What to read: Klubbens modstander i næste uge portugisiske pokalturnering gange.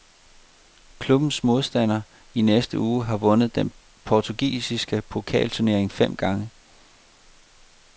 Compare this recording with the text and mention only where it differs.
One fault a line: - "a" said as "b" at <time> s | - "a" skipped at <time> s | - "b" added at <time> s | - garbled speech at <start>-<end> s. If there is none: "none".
- "har vundet den" added at 3.0 s
- "fem" added at 5.9 s